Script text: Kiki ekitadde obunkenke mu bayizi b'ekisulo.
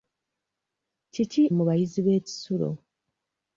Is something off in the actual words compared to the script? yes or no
yes